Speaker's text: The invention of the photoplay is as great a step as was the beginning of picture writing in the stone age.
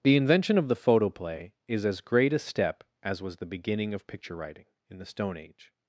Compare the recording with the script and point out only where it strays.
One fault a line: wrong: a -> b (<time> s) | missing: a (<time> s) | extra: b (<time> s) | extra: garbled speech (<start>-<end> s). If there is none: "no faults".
no faults